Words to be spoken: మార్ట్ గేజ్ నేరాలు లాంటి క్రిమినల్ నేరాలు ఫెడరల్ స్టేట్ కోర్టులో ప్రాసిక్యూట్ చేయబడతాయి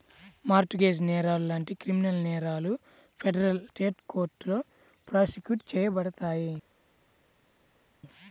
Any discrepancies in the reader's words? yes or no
no